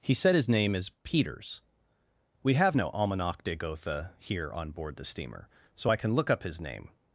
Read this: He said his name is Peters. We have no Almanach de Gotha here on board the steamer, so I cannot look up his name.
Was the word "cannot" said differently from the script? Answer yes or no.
yes